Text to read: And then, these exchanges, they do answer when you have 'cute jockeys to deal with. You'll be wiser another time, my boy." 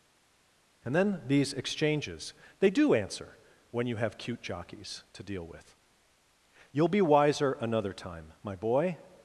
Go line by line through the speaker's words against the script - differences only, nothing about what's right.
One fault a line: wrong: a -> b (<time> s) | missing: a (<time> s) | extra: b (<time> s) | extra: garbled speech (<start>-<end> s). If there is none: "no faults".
no faults